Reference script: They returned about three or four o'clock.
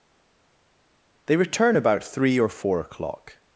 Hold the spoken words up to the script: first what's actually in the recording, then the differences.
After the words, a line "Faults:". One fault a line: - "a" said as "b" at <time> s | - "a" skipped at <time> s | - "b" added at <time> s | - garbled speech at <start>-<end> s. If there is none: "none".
They return about three or four o'clock.
Faults:
- "returned" said as "return" at 1.4 s